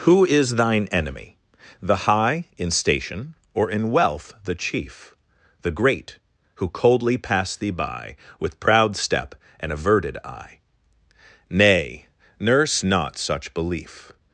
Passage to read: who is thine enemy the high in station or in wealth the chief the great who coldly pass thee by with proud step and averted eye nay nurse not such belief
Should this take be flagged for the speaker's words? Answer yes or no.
no